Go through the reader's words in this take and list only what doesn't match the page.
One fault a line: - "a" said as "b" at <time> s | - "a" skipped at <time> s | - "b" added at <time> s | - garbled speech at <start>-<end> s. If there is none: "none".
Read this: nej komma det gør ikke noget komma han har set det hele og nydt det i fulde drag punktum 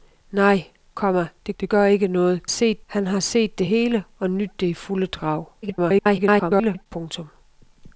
- "det" added at 1.6 s
- "komma" said as "set" at 2.4 s
- garbled speech at 5.6-6.9 s